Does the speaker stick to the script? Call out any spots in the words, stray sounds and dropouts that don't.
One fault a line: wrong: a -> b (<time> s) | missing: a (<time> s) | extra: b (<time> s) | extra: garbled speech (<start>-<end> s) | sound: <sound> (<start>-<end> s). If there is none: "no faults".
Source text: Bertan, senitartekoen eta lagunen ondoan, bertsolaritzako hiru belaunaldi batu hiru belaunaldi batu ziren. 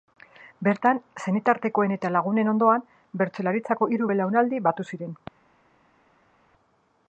missing: hiru belaunaldi batu (4.9 s)